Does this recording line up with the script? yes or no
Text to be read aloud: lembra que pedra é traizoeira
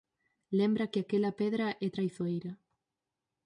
no